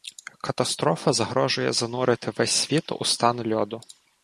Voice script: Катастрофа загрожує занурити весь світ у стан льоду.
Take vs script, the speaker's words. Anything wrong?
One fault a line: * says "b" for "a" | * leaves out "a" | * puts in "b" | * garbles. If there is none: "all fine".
all fine